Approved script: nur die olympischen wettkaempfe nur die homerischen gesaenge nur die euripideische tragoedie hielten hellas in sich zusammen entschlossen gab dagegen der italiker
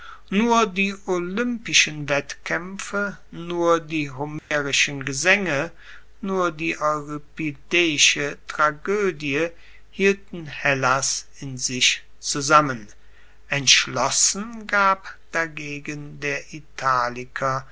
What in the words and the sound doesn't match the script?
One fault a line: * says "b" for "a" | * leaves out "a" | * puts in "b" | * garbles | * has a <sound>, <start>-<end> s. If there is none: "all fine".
* has a dropout, 4.4-4.5 s